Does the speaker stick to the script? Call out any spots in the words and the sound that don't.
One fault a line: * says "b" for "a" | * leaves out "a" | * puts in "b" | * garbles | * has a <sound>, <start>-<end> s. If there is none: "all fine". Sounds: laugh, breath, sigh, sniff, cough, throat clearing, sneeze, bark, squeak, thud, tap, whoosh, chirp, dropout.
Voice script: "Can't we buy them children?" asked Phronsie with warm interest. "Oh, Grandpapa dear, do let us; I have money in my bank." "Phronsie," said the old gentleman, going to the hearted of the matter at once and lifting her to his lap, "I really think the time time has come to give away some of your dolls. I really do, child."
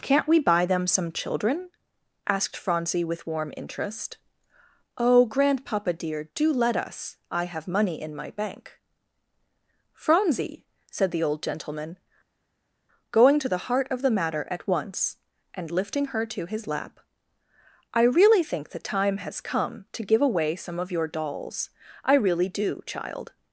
* puts in "some"
* says "heart" for "hearted"
* leaves out "time"